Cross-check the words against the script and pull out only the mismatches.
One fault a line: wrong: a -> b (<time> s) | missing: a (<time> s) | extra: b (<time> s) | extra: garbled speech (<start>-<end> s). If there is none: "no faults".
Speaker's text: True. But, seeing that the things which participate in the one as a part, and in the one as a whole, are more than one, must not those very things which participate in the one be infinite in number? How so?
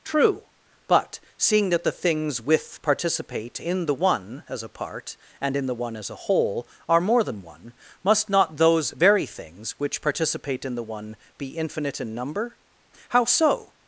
wrong: which -> with (2.4 s)